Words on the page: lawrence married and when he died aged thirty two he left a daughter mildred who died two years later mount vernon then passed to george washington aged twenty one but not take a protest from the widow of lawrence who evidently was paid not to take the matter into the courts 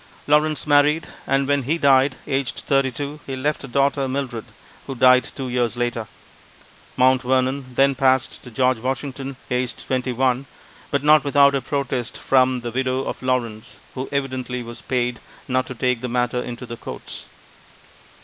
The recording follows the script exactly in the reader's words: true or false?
false